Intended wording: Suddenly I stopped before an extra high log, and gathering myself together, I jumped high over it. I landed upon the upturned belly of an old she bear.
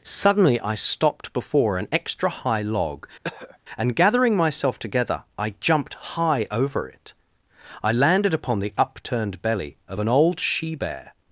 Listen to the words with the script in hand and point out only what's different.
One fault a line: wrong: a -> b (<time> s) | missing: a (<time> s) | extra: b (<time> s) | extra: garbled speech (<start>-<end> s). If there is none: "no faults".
no faults